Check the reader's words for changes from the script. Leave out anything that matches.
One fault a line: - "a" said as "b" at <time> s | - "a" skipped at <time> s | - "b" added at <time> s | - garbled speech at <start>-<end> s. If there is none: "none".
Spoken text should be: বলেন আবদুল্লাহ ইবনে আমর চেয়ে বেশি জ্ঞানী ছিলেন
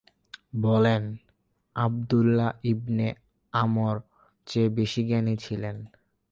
none